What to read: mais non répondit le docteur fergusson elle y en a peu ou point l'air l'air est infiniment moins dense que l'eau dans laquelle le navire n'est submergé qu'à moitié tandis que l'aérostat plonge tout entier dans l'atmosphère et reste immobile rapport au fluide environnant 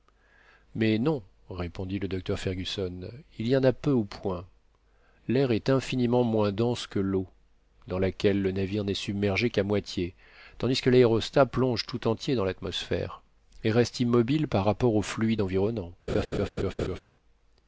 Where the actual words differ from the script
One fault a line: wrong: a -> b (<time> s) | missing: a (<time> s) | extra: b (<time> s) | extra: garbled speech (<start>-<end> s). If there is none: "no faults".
wrong: elle -> il (3.4 s)
missing: l'air (5.5 s)
extra: par (14.5 s)